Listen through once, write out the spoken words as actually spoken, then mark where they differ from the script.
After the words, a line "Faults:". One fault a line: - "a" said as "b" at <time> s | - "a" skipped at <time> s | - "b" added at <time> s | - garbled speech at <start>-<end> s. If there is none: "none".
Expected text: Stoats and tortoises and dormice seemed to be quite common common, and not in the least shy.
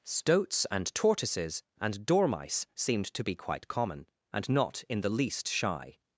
Stoats and tortoises and dormice seemed to be quite common, and not in the least shy.
Faults:
- "common" skipped at 4.1 s